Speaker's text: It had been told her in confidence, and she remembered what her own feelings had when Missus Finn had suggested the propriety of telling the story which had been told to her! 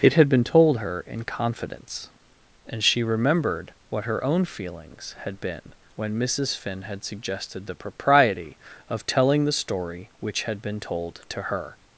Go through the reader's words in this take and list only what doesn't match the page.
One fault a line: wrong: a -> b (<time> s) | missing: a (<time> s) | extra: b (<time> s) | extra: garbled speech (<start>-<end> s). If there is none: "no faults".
extra: been (5.4 s)